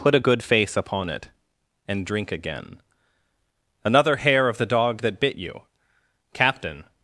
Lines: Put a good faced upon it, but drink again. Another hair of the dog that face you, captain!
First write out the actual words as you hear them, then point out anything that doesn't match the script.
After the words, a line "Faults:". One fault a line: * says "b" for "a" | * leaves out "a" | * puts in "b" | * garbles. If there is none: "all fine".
Put a good face upon it, and drink again. Another hair of the dog that bit you, captain!
Faults:
* says "face" for "faced"
* says "and" for "but"
* says "bit" for "face"